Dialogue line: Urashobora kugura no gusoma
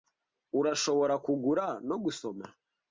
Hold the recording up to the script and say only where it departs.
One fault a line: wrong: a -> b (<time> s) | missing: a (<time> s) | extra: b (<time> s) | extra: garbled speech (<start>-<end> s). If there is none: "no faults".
no faults